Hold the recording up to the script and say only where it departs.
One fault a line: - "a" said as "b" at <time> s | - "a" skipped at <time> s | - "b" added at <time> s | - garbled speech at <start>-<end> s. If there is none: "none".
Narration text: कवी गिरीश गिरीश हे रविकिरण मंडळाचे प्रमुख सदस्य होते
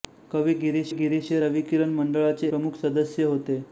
none